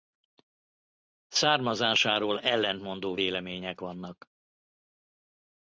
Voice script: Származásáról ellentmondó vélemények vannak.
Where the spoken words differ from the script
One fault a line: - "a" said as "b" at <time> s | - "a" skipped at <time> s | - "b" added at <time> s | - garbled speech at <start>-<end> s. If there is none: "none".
none